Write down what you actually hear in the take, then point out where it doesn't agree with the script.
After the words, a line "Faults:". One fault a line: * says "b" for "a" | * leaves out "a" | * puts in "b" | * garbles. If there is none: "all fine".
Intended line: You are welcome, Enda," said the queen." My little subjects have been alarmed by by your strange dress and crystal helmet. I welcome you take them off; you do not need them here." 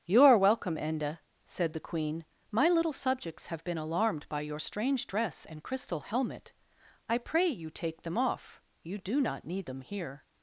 You are welcome, Enda," said the queen." My little subjects have been alarmed by your strange dress and crystal helmet. I pray you take them off; you do not need them here."
Faults:
* leaves out "by"
* says "pray" for "welcome"